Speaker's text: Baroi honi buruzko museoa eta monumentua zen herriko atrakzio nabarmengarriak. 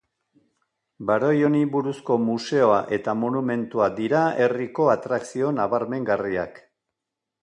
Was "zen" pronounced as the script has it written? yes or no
no